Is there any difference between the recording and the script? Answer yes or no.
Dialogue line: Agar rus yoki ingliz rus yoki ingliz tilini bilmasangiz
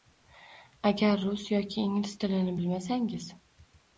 yes